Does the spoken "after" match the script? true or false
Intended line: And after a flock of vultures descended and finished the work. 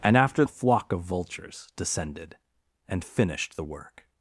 true